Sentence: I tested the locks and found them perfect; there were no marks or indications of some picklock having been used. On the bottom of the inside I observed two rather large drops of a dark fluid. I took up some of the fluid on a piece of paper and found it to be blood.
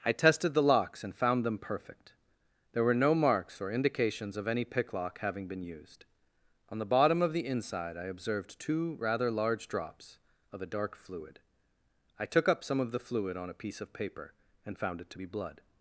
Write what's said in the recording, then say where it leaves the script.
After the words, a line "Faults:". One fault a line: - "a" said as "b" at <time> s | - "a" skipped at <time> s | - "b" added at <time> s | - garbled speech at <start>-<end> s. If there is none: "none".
I tested the locks and found them perfect; there were no marks or indications of any picklock having been used. On the bottom of the inside I observed two rather large drops of a dark fluid. I took up some of the fluid on a piece of paper and found it to be blood.
Faults:
- "some" said as "any" at 4.5 s